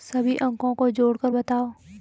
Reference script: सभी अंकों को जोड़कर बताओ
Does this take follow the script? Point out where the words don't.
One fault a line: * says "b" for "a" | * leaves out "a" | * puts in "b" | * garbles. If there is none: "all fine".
all fine